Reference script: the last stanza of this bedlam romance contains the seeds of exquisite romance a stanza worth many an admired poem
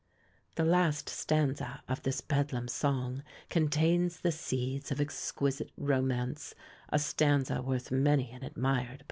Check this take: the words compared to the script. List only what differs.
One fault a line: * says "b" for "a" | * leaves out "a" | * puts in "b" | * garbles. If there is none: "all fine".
* says "song" for "romance"